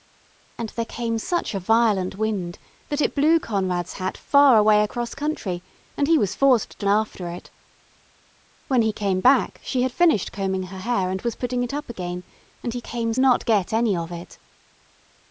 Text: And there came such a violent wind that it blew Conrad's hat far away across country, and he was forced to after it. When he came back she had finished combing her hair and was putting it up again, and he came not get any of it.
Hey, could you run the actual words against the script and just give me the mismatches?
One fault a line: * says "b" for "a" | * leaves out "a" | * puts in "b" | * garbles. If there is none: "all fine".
all fine